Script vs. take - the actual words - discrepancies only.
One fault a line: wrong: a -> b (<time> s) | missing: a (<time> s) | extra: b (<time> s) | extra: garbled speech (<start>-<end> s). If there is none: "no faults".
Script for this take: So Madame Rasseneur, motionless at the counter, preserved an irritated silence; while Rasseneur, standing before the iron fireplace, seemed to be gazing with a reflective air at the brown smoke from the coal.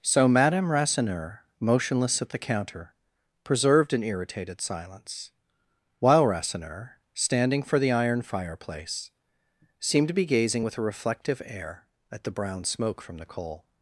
wrong: before -> for (7.6 s)